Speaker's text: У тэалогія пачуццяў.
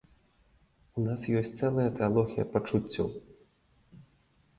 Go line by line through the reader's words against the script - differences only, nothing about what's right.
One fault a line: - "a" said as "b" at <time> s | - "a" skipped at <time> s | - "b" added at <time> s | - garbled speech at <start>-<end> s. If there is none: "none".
- "нас ёсць цэлая" added at 1.1 s